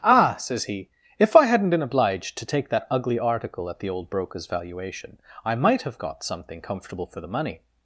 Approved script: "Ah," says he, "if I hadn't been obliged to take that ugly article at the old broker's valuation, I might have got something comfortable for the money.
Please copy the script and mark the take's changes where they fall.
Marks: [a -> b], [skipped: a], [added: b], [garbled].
"Ah," says he, "if I hadn't been obliged to take that ugly article at the old broker's valuation, I might have got something comfortable for the money.